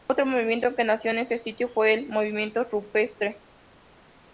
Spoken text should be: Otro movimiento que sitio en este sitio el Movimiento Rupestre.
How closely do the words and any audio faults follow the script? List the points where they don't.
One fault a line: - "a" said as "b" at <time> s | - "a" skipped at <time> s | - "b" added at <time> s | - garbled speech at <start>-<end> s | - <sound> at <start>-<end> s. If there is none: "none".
- "sitio" said as "nació" at 0.8 s
- "fue" added at 1.7 s